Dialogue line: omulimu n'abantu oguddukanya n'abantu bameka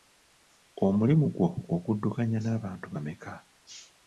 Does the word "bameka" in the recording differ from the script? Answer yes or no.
no